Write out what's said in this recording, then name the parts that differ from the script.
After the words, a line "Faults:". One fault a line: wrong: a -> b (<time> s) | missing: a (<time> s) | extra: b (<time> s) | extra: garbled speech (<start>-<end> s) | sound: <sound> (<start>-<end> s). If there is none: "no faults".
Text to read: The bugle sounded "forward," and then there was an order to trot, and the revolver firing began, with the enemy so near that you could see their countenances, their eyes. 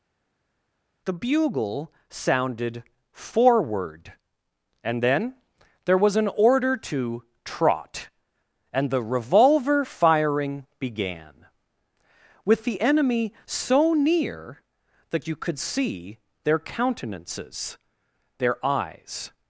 The bugle sounded "forward," and then there was an order to trot, and the revolver firing began, with the enemy so near that you could see their countenances, their eyes.
Faults:
no faults